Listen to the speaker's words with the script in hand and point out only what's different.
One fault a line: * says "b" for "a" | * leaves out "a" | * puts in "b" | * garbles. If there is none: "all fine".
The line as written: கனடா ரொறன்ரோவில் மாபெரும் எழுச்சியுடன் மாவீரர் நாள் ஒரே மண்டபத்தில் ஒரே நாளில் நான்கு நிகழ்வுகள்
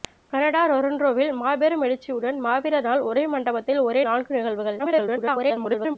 * leaves out "நாளில்"
* garbles